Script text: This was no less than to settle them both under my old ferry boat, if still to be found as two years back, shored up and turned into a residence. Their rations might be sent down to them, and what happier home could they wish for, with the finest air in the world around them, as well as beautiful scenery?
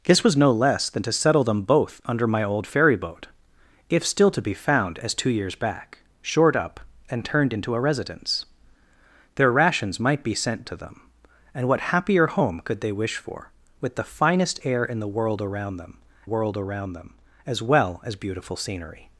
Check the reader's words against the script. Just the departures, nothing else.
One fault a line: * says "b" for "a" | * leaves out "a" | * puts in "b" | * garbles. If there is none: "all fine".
* leaves out "down"
* puts in "world around them"